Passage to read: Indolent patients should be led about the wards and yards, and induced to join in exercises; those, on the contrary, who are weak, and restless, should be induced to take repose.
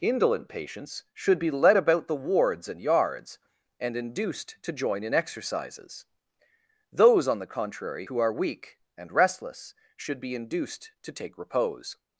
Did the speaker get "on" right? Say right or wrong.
right